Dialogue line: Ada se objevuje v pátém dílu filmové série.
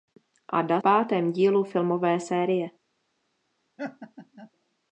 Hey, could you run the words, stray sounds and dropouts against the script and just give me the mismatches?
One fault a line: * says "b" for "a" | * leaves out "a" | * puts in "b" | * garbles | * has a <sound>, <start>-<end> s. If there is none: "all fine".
* leaves out "se objevuje v"
* has a laugh, 3.8-4.5 s